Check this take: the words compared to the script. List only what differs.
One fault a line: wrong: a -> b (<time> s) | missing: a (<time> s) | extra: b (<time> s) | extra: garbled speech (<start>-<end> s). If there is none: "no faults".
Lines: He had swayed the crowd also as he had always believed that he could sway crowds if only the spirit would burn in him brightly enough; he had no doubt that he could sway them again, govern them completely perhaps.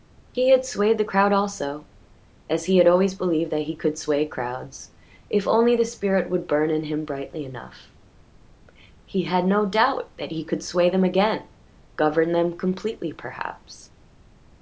no faults